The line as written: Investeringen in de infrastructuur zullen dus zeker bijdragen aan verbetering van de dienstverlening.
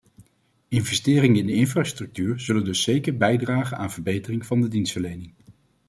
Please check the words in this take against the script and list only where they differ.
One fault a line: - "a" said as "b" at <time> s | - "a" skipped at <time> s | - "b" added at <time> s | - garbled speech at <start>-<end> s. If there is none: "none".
none